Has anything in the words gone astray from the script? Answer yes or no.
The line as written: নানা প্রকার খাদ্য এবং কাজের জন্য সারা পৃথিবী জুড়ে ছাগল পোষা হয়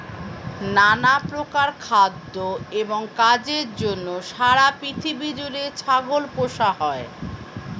no